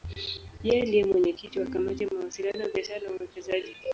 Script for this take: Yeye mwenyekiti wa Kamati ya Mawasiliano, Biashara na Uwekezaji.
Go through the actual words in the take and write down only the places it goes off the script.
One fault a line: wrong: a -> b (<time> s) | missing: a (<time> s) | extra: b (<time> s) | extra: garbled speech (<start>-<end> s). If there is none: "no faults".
extra: ndiye (0.9 s)